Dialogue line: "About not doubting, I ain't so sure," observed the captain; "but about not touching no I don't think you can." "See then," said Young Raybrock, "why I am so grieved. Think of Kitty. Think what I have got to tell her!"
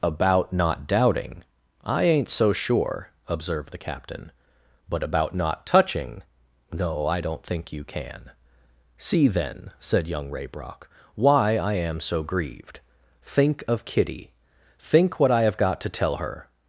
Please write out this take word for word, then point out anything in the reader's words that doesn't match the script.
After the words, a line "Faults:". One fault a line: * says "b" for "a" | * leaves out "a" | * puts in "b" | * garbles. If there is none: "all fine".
"About not doubting, I ain't so sure," observed the captain; "but about not touching no I don't think you can." "See then," said Young Raybrock, "why I am so grieved. Think of Kitty. Think what I have got to tell her!"
Faults:
all fine